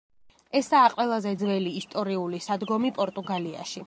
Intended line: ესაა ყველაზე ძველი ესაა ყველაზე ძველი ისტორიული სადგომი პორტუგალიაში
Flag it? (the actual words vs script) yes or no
yes